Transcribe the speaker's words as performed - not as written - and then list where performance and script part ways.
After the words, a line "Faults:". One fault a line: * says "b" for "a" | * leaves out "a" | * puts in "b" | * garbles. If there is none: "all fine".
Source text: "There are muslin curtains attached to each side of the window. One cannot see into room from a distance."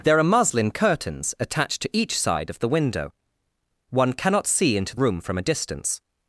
"There are muslin curtains attached to each side of the window. One cannot see into room from a distance."
Faults:
all fine